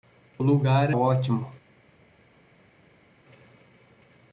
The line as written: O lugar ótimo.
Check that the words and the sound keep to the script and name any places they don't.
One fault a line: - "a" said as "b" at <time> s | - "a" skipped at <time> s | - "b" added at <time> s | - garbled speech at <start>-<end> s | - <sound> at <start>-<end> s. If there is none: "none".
none